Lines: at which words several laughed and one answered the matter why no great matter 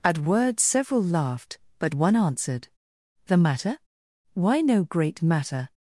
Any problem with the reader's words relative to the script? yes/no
yes